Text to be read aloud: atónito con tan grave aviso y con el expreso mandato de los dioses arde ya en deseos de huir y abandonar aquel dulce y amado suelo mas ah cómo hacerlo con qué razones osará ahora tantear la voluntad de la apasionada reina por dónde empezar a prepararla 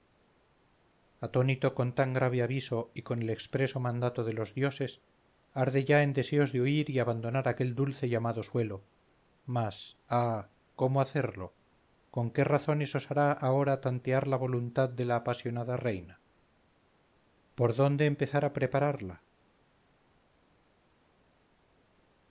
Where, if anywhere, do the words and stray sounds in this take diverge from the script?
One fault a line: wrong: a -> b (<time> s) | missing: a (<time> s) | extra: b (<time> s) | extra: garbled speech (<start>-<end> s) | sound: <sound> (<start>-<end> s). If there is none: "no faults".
no faults